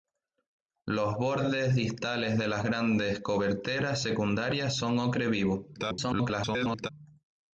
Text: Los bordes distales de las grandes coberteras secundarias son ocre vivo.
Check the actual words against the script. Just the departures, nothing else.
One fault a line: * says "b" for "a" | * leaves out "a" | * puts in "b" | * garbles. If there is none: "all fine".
* garbles